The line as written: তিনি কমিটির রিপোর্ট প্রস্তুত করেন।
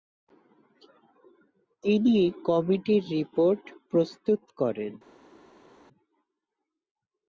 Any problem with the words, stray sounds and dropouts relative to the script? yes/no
no